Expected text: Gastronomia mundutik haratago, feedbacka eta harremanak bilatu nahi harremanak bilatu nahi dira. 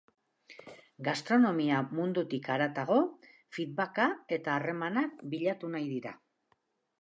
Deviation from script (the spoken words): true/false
true